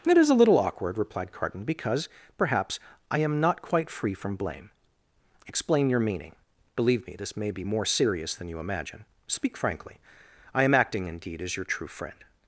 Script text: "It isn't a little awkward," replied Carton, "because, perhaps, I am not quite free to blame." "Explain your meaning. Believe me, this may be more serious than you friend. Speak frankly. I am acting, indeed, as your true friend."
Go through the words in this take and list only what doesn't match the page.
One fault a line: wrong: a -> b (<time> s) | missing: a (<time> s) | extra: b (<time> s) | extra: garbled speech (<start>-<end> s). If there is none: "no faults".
wrong: isn't -> is (0.2 s)
wrong: to -> from (4.1 s)
wrong: friend -> imagine (8.6 s)